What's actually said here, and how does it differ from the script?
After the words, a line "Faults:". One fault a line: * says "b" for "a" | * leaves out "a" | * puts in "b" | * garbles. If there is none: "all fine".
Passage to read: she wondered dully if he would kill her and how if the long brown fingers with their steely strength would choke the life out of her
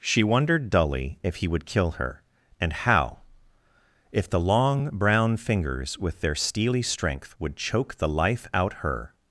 she wondered dully if he would kill her and how if the long brown fingers with their steely strength would choke the life out her
Faults:
* leaves out "of"